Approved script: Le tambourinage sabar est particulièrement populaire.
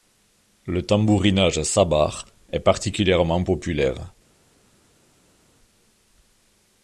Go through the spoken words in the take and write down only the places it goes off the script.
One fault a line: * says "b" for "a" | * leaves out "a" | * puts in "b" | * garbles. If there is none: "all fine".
all fine